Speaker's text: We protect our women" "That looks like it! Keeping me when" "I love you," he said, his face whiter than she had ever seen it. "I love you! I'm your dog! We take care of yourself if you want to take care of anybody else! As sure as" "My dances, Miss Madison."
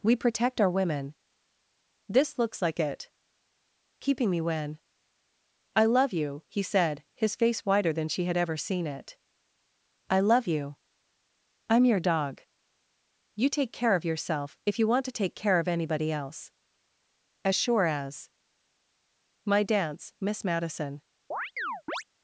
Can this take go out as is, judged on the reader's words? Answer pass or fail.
fail